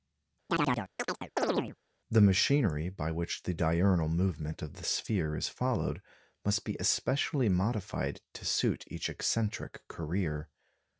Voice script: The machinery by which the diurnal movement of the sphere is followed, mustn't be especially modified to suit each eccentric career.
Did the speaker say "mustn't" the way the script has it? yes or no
no